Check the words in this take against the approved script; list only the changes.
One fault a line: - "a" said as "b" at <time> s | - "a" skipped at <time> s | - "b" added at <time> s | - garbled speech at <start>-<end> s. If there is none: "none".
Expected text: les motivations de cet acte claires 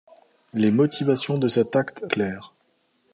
none